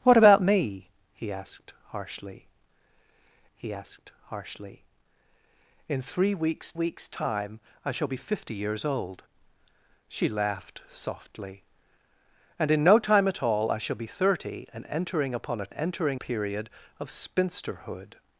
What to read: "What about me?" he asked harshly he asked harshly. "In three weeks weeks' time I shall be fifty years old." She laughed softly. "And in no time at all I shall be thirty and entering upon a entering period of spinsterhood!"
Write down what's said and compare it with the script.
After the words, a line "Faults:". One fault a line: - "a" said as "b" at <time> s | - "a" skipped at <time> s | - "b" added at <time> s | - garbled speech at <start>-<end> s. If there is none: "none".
"What about me?" he asked harshly he asked harshly. "In three weeks weeks' time I shall be fifty years old." She laughed softly. "And in no time at all I shall be thirty and entering upon a entering period of spinsterhood!"
Faults:
none